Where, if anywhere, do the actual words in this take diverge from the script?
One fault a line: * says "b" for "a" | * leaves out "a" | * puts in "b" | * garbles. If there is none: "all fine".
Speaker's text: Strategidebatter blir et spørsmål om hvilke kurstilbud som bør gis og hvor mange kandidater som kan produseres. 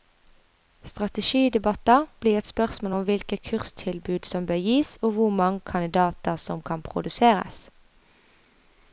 all fine